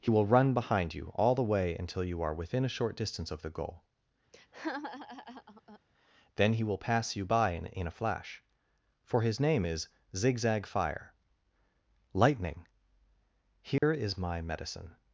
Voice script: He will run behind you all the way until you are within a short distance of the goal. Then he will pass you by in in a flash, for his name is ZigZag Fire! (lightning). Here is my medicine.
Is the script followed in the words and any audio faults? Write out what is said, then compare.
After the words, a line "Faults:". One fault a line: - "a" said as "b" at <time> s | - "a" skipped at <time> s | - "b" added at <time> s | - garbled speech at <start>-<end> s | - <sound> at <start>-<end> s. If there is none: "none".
He will run behind you all the way until you are within a short distance of the goal. Then he will pass you by in in a flash, for his name is ZigZag Fire! (lightning). Here is my medicine.
Faults:
- laugh at 4.3-5.8 s
- dropout at 13.8-13.8 s